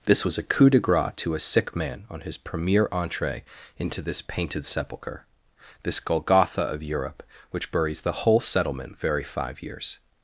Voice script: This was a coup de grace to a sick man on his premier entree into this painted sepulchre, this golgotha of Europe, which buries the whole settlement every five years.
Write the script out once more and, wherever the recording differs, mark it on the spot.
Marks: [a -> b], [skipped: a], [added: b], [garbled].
This was a coup de grace to a sick man on his premier entree into this painted sepulchre, this golgotha of Europe, which buries the whole settlement [every -> very] five years.